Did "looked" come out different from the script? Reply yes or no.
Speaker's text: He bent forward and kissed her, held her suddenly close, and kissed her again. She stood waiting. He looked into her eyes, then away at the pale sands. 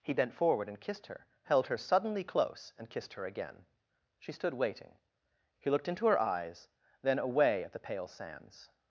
no